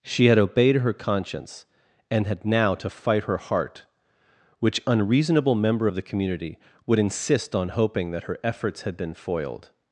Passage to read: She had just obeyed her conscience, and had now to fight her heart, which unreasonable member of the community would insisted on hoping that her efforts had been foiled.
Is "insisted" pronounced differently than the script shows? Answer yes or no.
yes